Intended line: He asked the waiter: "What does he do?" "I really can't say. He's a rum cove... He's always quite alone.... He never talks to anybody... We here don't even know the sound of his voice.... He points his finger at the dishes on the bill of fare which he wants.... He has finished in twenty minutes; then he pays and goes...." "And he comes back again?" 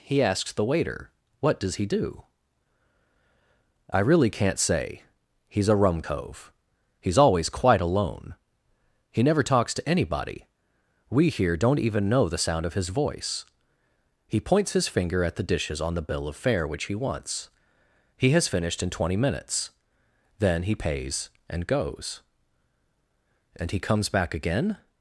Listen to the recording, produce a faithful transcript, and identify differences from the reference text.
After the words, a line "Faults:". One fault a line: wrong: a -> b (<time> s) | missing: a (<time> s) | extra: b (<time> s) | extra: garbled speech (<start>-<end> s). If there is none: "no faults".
He asks the waiter: "What does he do?" "I really can't say. He's a rum cove... He's always quite alone.... He never talks to anybody... We here don't even know the sound of his voice.... He points his finger at the dishes on the bill of fare which he wants.... He has finished in twenty minutes; then he pays and goes...." "And he comes back again?"
Faults:
wrong: asked -> asks (0.2 s)